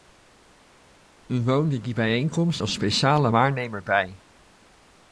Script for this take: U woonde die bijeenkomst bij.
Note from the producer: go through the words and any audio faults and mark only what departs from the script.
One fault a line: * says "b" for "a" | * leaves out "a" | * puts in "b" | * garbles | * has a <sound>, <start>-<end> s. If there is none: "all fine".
* puts in "als speciale waarnemer"